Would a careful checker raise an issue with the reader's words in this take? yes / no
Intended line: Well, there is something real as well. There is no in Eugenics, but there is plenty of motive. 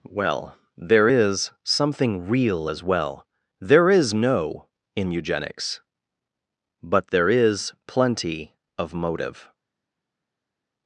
no